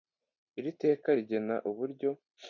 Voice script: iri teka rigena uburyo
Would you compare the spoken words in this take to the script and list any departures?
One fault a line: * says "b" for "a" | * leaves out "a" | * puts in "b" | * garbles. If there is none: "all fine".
all fine